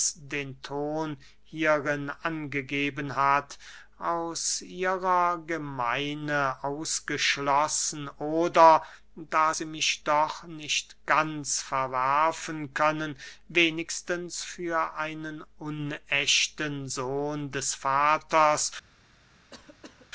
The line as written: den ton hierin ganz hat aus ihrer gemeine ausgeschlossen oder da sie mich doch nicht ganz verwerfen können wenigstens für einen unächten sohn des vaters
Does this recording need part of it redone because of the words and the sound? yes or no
yes